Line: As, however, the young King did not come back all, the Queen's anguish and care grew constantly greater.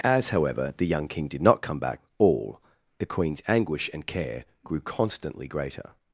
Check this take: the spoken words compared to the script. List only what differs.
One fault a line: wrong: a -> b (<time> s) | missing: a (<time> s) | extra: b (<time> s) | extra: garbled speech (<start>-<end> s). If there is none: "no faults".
no faults